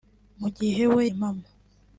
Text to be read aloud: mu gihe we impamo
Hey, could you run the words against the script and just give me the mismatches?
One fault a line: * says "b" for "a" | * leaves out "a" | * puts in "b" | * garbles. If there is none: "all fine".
all fine